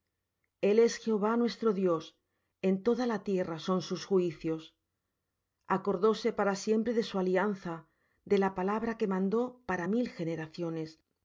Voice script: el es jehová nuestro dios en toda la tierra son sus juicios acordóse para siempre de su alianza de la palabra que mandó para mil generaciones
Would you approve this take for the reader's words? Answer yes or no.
yes